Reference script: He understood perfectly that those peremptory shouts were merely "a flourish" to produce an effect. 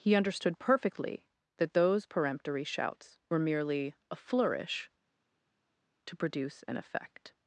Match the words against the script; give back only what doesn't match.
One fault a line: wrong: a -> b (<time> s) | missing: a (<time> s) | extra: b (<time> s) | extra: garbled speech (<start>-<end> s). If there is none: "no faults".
no faults